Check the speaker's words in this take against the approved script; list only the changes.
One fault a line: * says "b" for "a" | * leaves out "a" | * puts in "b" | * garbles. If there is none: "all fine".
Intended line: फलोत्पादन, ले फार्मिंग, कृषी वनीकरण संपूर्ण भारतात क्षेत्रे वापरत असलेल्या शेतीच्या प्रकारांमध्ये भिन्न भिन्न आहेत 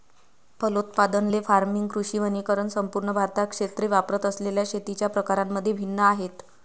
* leaves out "भिन्न"